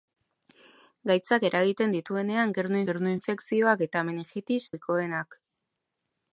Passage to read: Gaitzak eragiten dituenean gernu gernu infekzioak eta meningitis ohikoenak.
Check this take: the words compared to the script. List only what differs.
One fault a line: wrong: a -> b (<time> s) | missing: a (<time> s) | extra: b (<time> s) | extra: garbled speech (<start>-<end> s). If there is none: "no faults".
no faults